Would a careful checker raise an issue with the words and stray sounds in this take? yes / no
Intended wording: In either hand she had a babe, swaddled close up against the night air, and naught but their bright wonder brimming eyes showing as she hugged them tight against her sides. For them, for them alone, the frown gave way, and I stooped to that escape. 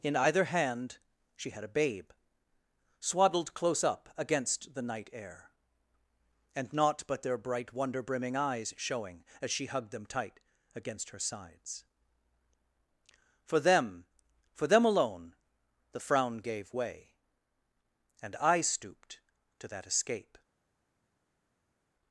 no